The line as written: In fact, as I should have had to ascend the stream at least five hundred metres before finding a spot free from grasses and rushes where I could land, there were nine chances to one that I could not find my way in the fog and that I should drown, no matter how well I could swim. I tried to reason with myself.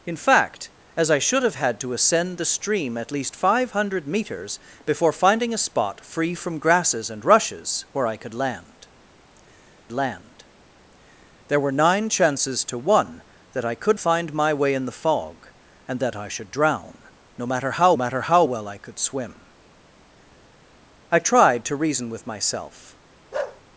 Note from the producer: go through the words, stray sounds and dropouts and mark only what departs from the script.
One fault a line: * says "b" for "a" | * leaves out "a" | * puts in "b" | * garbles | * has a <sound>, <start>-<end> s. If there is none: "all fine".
* puts in "land"
* leaves out "not"
* puts in "matter how"
* has a bark, 23.3-23.6 s